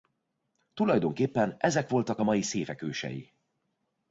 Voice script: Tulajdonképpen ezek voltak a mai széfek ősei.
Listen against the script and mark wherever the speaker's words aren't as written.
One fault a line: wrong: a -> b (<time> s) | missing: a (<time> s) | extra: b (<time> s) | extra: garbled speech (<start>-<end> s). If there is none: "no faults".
no faults